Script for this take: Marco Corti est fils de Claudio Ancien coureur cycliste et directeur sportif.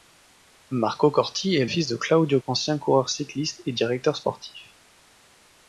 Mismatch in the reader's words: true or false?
false